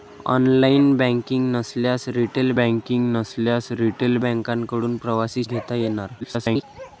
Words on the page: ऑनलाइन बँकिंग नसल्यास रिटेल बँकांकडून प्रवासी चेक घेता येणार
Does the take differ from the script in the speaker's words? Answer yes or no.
yes